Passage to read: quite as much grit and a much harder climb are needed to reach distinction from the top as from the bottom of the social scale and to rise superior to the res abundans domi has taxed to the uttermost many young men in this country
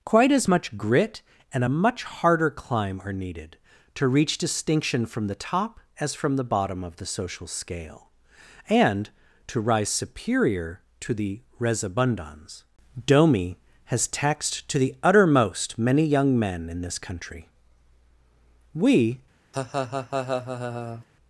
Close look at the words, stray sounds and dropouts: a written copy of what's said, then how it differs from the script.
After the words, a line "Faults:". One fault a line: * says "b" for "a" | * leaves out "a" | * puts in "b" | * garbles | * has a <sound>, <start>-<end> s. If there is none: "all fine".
quite as much grit and a much harder climb are needed to reach distinction from the top as from the bottom of the social scale and to rise superior to the res abundans domi has taxed to the uttermost many young men in this country we
Faults:
* puts in "we"
* has a laugh, 19.5-21.1 s